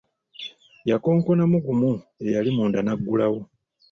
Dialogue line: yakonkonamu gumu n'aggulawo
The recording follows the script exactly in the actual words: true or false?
false